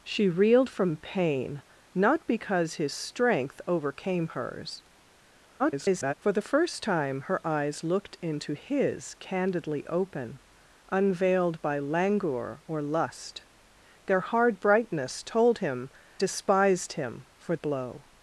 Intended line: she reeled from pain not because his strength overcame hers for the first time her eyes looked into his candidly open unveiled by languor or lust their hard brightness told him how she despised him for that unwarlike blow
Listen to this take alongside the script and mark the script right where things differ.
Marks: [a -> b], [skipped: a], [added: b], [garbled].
she reeled from pain not because his strength overcame hers [garbled] for the first time her eyes looked into his candidly open unveiled by languor or lust their hard brightness told him [skipped: how she] despised him for [skipped: that unwarlike] blow